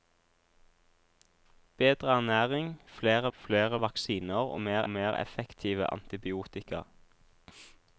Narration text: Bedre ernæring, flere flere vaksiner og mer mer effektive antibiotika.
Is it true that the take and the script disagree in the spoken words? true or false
false